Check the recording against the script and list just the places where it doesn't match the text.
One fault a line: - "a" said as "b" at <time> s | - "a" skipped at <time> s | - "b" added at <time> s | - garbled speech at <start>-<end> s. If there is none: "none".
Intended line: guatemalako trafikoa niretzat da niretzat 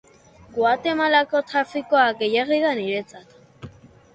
- "niretzat" said as "gehiegi" at 2.2 s